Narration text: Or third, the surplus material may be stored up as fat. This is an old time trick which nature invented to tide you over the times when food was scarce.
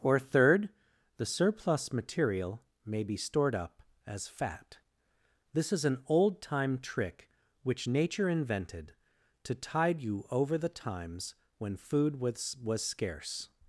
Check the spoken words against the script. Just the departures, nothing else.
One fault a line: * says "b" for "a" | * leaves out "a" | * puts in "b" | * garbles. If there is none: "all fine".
* puts in "was"